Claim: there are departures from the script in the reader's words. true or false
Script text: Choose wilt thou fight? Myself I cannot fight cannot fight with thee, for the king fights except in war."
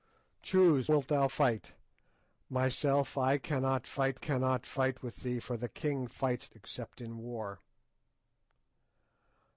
false